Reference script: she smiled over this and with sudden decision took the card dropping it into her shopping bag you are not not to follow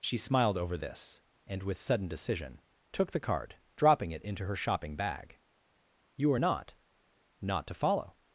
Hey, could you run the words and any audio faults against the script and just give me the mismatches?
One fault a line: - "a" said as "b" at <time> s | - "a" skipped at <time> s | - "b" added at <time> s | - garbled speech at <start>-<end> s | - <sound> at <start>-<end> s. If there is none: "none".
none